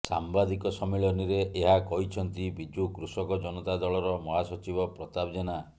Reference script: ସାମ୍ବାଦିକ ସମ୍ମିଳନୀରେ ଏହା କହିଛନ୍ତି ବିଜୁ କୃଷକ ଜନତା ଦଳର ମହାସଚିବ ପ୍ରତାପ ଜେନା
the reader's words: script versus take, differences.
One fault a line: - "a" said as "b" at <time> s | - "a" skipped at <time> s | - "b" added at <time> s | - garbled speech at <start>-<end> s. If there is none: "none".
none